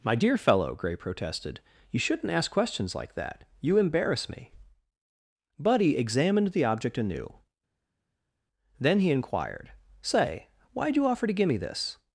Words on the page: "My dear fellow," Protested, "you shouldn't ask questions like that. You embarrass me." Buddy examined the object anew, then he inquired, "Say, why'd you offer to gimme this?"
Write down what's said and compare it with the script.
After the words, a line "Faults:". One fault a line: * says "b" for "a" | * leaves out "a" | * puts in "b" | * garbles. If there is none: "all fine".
"My dear fellow," Gray protested, "you shouldn't ask questions like that. You embarrass me." Buddy examined the object anew, then he inquired, "Say, why'd you offer to gimme this?"
Faults:
* puts in "Gray"